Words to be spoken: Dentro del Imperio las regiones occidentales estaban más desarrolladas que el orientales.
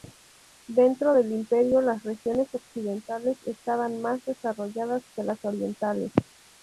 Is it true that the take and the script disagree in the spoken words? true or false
true